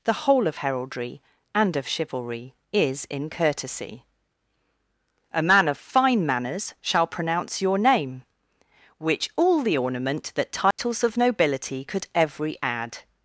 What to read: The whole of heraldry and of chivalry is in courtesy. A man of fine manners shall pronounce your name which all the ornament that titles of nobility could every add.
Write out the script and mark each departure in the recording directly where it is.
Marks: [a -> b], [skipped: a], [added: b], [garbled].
The whole of heraldry and of chivalry is in courtesy. A man of fine manners shall pronounce your name which all the ornament that titles of nobility could every add.